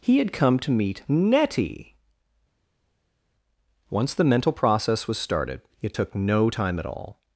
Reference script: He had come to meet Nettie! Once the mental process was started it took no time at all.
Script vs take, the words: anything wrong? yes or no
no